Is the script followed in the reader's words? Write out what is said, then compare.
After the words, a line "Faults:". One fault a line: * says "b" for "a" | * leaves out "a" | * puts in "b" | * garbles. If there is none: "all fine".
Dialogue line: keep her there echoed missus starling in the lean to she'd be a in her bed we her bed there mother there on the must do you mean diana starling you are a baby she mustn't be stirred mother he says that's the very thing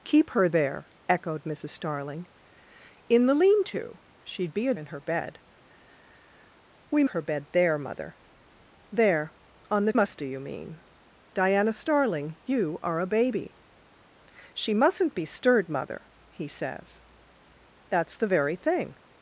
keep her there echoed missus starling in the lean to she'd be a in her bed we her bed there mother there on the must do you mean diana starling you are a baby she mustn't be stirred mother he says that's the very thing
Faults:
all fine